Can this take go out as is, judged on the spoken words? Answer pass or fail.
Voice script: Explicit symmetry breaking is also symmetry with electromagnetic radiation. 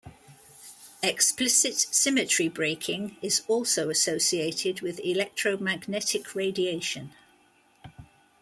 fail